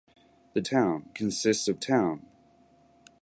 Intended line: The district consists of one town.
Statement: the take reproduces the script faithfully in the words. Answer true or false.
false